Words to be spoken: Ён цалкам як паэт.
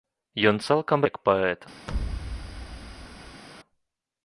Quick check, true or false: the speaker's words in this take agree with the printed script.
true